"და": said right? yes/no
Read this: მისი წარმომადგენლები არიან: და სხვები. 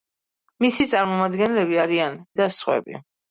yes